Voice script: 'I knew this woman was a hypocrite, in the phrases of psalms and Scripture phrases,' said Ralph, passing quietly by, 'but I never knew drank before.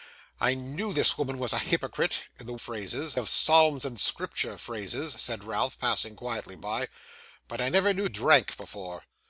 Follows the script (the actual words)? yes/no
yes